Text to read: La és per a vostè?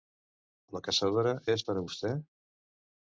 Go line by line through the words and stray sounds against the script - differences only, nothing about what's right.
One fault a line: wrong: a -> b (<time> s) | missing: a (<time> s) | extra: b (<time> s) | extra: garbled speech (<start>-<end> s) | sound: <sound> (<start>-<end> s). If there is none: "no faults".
extra: caçadora (0.9 s)